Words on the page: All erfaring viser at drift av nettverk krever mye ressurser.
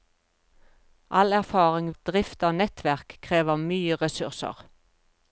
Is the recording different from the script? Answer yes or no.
yes